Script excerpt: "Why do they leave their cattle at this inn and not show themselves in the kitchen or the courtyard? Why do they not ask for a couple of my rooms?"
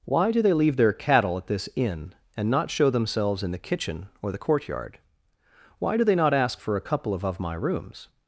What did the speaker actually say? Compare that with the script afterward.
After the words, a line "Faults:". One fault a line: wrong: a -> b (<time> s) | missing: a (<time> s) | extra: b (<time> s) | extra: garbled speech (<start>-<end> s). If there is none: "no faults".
"Why do they leave their cattle at this inn and not show themselves in the kitchen or the courtyard? Why do they not ask for a couple of of my rooms?"
Faults:
extra: of (7.2 s)